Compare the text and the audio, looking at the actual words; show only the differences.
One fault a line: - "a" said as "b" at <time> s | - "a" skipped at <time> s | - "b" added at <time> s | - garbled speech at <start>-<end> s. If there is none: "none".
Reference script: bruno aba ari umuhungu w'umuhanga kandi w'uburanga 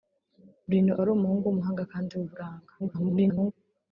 - "aba" skipped at 0.9 s
- garbled speech at 2.8-3.5 s